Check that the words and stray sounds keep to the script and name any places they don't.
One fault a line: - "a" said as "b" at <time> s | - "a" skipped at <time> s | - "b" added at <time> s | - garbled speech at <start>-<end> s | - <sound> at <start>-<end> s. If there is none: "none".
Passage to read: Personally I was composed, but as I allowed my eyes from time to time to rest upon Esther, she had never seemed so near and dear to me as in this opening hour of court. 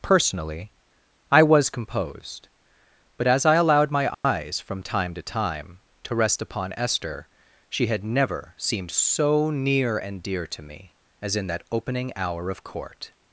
- dropout at 4.1-4.2 s
- "this" said as "that" at 11.5 s